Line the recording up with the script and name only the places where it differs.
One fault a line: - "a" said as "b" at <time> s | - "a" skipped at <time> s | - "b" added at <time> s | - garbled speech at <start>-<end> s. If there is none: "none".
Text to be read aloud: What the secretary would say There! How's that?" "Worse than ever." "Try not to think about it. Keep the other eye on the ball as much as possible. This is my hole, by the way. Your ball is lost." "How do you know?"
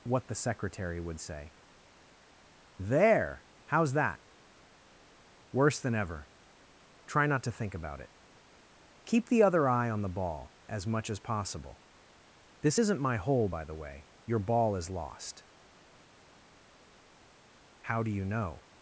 - "is" said as "isn't" at 12.8 s